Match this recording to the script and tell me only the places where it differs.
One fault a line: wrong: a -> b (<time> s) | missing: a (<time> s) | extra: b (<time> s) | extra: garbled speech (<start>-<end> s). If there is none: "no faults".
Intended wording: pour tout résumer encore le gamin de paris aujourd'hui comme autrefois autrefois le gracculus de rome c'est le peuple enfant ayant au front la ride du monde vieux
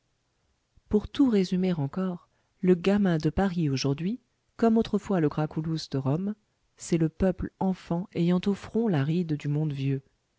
missing: autrefois (5.2 s)